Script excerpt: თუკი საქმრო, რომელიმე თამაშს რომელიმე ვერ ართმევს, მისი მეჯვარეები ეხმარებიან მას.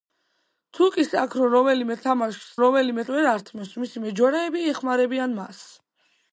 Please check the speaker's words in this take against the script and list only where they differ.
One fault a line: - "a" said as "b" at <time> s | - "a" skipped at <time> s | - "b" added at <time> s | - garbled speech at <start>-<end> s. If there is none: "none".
none